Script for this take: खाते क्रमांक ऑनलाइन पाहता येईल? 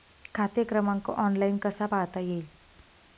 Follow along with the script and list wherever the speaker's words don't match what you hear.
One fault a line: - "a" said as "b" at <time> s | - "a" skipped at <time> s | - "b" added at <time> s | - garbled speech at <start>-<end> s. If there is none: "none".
- "कसा" added at 1.6 s